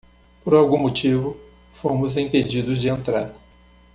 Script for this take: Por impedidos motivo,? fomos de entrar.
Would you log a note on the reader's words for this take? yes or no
yes